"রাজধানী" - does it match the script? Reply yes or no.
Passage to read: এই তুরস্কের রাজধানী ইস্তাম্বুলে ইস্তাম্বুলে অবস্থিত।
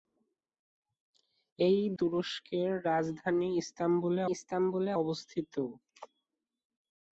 yes